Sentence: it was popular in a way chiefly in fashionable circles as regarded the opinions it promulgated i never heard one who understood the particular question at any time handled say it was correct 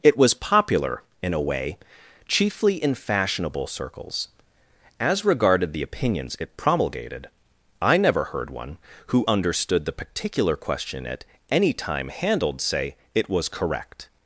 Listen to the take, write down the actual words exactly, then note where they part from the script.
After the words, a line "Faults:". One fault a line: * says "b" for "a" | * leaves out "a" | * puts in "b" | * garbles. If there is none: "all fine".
it was popular in a way chiefly in fashionable circles as regarded the opinions it promulgated i never heard one who understood the particular question at any time handled say it was correct
Faults:
all fine